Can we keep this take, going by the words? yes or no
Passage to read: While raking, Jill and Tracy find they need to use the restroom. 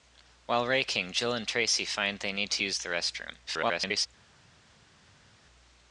no